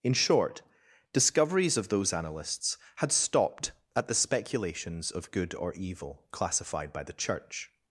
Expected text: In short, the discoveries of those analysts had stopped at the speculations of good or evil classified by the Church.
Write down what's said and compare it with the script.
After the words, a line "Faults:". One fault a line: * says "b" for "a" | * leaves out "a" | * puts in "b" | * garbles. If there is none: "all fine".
In short, discoveries of those analysts had stopped at the speculations of good or evil classified by the Church.
Faults:
* leaves out "the"